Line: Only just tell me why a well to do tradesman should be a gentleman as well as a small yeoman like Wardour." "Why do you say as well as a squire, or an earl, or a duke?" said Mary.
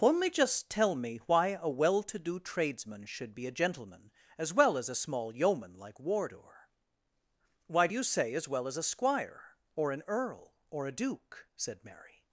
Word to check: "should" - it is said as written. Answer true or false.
true